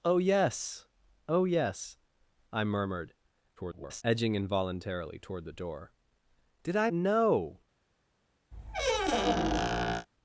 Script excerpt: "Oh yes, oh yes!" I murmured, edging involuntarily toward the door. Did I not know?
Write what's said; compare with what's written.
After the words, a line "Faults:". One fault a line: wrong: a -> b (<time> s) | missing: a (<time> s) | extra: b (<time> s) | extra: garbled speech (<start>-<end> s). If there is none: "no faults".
"Oh yes, oh yes!" I murmured, [garbled] edging involuntarily toward the door. Did I know?
Faults:
extra: garbled speech (3.6-4.0 s)
missing: not (6.9 s)